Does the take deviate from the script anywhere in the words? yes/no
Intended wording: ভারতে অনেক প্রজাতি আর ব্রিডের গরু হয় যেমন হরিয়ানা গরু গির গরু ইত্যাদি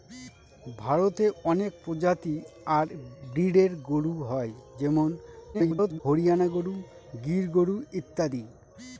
yes